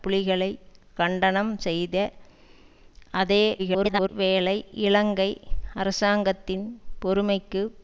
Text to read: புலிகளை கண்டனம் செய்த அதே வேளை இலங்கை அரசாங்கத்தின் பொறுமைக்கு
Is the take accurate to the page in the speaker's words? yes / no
no